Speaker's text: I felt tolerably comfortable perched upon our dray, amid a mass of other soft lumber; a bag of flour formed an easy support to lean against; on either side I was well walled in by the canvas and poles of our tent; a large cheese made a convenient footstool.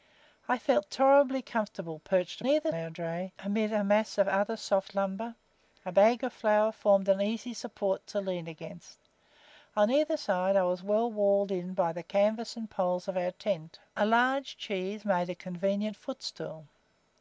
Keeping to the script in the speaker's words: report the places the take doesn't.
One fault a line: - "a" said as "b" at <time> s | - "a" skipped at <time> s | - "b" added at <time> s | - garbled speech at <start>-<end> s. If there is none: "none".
- "upon" said as "either" at 2.4 s